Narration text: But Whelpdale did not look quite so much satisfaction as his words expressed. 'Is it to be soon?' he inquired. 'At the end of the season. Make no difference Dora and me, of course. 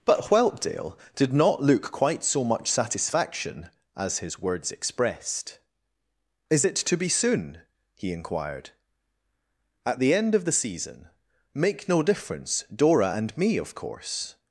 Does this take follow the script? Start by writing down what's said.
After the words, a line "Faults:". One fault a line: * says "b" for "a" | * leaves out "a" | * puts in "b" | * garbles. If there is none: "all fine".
But Whelpdale did not look quite so much satisfaction as his words expressed. 'Is it to be soon?' he inquired. 'At the end of the season. Make no difference Dora and me, of course.
Faults:
all fine